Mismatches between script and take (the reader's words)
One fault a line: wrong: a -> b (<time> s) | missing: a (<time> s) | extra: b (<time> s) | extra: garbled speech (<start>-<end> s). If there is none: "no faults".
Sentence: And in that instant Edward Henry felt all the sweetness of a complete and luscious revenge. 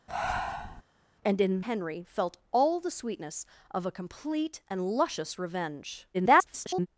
missing: that instant Edward (1.6 s)
extra: garbled speech (6.1-6.9 s)